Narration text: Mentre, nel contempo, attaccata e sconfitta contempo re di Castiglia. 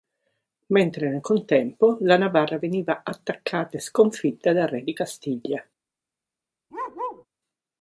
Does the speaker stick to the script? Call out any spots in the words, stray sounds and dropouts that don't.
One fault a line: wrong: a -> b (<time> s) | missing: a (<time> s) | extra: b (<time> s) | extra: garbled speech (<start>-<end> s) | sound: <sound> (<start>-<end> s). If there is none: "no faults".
extra: la Navarra veniva (2.0 s)
wrong: contempo -> dal (4.5 s)
sound: bark (6.7-7.3 s)